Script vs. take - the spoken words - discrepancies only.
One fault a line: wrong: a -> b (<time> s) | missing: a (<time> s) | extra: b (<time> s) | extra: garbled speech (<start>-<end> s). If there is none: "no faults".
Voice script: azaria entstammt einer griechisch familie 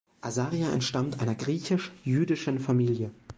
extra: jüdischen (2.0 s)